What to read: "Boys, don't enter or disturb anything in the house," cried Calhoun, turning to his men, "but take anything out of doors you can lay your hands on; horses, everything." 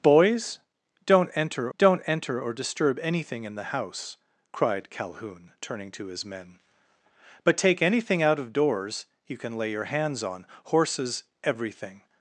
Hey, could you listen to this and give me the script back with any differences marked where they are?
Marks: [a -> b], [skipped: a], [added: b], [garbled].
"Boys, don't enter [added: don't enter] or disturb anything in the house," cried Calhoun, turning to his men, "but take anything out of doors you can lay your hands on; horses, everything."